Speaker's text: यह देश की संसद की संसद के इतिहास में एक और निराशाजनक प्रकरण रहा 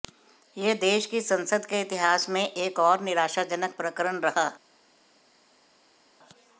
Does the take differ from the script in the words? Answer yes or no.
yes